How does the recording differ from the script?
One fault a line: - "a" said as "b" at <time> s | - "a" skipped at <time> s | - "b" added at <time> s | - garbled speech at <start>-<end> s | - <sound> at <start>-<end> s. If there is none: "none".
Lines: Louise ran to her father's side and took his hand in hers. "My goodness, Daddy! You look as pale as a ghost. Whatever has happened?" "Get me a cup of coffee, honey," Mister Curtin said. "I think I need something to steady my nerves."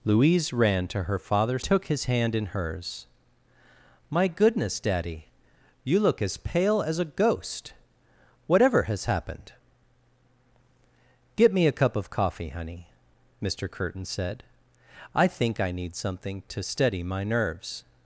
- "side and" skipped at 1.6 s